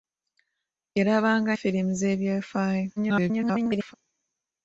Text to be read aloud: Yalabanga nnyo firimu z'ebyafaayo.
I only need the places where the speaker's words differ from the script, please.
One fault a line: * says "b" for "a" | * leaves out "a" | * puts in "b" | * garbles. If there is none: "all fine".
* leaves out "nnyo"
* garbles